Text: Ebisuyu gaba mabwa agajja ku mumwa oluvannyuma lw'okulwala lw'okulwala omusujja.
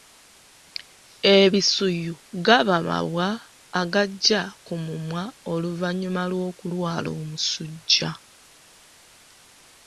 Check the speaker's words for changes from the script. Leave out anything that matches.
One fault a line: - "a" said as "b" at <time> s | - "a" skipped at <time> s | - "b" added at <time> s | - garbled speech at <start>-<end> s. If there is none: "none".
- "lw'okulwala" skipped at 7.1 s